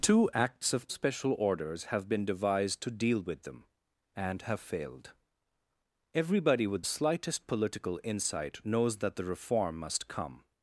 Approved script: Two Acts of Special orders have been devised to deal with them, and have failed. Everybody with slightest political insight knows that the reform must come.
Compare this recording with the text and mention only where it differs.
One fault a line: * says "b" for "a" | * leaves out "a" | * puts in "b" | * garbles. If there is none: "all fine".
all fine